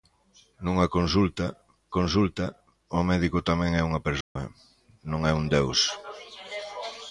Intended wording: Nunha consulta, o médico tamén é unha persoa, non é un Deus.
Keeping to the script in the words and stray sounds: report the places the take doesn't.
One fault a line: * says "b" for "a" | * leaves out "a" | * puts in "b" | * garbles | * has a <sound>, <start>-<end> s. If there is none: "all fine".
* puts in "consulta"
* has a dropout, 4.2-4.4 s